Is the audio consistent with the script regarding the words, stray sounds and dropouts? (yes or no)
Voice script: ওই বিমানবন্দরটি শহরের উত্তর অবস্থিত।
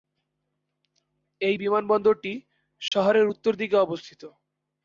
no